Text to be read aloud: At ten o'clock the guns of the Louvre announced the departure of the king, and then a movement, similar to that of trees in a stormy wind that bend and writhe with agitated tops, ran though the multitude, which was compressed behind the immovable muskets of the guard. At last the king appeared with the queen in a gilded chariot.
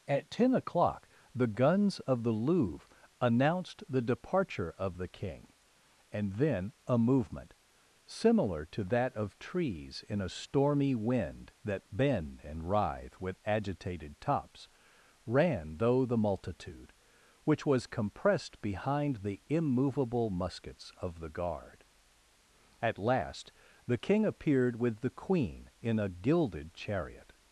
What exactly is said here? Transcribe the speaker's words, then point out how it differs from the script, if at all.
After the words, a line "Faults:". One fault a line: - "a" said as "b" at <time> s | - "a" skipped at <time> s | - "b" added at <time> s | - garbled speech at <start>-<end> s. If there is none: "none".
At ten o'clock the guns of the Louvre announced the departure of the king, and then a movement, similar to that of trees in a stormy wind that bend and writhe with agitated tops, ran though the multitude, which was compressed behind the immovable muskets of the guard. At last the king appeared with the queen in a gilded chariot.
Faults:
none